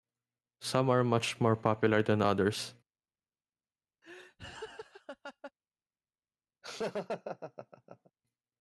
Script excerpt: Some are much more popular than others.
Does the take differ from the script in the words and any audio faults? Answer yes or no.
yes